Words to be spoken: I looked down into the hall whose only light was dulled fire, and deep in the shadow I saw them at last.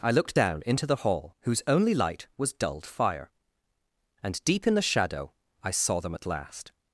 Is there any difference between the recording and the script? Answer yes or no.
no